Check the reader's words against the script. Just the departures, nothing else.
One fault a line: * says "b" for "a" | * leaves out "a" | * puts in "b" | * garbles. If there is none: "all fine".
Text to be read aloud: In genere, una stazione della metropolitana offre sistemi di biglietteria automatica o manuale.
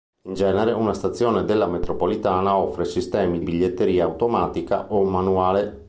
* leaves out "di"